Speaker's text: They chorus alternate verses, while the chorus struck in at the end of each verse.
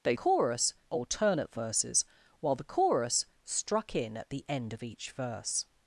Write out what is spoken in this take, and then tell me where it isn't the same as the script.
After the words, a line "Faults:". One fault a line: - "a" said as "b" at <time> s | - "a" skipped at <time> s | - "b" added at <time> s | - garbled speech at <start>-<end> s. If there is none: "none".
They chorus alternate verses, while the chorus struck in at the end of each verse.
Faults:
none